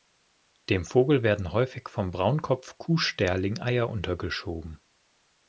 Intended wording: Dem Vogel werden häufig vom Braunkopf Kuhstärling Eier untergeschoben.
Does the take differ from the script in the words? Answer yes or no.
no